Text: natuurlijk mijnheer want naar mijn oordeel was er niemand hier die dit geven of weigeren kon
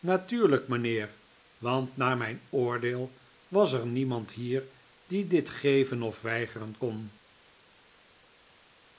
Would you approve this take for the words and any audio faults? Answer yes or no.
yes